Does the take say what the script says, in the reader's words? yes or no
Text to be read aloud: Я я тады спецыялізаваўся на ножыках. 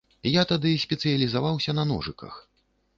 no